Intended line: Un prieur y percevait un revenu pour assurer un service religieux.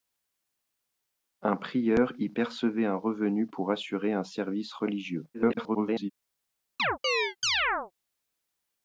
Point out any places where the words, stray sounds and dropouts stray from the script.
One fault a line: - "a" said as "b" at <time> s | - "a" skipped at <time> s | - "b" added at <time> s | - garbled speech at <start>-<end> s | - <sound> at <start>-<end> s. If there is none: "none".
- garbled speech at 5.3-6.1 s
- chirp at 6.8-7.9 s